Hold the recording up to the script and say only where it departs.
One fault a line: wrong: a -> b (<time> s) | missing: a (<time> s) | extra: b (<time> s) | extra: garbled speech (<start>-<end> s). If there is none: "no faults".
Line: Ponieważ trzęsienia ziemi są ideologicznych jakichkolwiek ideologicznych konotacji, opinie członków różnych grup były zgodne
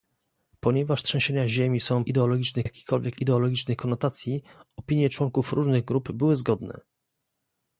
no faults